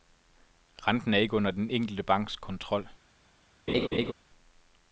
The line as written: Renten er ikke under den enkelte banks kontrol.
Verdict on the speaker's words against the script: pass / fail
pass